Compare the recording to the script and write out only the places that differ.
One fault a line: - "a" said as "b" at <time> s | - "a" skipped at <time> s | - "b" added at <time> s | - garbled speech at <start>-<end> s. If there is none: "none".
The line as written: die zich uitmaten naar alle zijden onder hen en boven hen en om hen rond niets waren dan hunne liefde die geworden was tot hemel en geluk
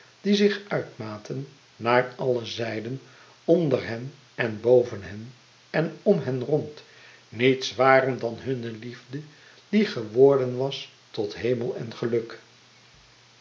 none